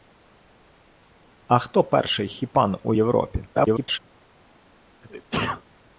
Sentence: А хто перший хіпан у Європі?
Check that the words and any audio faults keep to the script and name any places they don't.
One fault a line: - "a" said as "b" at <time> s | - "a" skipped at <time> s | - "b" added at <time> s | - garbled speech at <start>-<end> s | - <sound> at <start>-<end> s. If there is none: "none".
- garbled speech at 3.5-4.0 s
- sneeze at 5.0-5.6 s